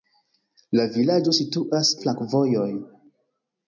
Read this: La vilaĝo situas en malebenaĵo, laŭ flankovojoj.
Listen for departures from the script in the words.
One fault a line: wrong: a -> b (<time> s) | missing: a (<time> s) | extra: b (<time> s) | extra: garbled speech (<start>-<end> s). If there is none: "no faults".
missing: en malebenaĵo laŭ (1.9 s)